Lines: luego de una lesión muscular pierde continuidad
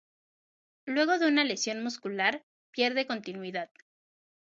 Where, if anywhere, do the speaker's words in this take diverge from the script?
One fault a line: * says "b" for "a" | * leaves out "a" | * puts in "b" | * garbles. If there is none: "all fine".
all fine